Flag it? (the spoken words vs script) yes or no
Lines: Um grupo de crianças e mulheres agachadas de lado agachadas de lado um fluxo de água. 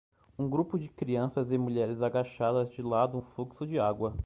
yes